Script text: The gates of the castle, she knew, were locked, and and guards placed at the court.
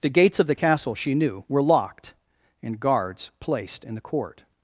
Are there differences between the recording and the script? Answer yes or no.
yes